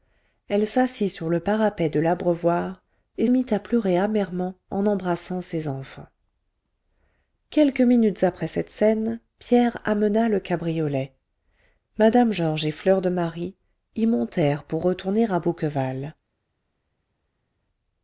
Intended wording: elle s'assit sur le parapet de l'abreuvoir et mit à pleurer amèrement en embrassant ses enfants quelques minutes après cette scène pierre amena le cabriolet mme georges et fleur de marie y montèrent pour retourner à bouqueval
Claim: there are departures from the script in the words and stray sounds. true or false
false